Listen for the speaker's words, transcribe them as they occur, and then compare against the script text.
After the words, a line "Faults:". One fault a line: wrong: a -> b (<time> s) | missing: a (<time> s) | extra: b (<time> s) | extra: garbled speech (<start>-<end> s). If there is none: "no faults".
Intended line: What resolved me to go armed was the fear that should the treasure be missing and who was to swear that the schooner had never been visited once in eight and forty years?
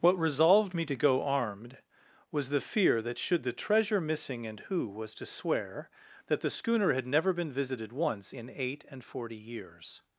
What resolved me to go armed was the fear that should the treasure missing and who was to swear that the schooner had never been visited once in eight and forty years?
Faults:
missing: be (4.0 s)